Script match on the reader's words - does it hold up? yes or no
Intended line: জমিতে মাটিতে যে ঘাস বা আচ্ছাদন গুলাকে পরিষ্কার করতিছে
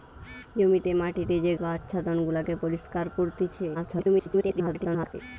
no